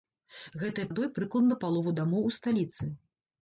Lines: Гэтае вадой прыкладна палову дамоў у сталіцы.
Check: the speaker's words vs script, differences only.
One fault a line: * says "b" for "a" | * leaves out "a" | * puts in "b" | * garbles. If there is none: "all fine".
all fine